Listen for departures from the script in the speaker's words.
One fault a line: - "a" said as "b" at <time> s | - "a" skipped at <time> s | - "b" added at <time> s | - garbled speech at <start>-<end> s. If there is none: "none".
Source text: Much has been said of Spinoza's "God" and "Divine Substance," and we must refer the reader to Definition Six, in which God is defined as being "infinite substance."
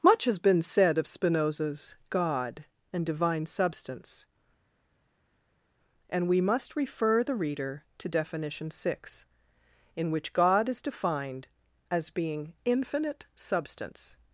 none